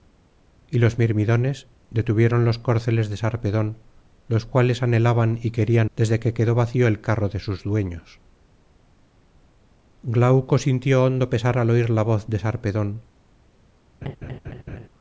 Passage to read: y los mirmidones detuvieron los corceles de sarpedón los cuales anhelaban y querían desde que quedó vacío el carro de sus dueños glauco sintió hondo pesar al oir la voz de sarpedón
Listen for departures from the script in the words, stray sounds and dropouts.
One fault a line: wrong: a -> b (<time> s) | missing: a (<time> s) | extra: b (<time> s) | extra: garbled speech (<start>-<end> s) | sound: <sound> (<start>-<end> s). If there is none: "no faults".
sound: laugh (14.0-14.9 s)